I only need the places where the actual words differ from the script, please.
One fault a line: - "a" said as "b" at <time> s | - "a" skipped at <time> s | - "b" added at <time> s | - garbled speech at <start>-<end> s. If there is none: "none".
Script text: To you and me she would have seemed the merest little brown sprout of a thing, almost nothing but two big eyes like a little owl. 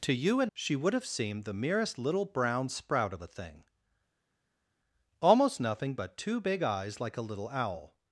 - "me" skipped at 0.5 s